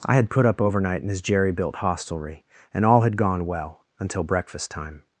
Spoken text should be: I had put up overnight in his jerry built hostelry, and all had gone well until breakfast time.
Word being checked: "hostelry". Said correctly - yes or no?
yes